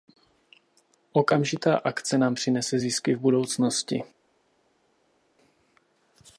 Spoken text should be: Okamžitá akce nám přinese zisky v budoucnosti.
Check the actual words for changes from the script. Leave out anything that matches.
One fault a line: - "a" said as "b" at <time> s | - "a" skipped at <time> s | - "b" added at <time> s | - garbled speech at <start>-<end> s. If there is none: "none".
none